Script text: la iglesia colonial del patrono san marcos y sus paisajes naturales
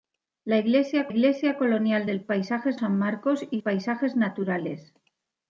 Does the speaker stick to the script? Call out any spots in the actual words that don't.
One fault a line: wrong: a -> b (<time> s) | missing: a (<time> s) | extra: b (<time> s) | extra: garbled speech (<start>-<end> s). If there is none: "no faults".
extra: iglesia (1.1 s)
wrong: patrono -> paisajes (2.2 s)
missing: sus (3.6 s)